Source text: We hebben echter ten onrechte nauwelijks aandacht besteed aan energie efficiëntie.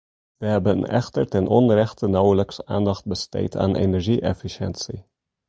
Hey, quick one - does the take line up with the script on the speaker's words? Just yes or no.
yes